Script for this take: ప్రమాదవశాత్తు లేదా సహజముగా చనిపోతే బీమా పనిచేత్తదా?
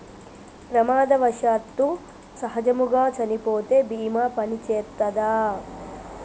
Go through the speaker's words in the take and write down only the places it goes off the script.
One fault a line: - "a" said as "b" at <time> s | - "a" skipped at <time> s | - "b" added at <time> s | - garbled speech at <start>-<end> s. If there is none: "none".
- "లేదా" skipped at 1.9 s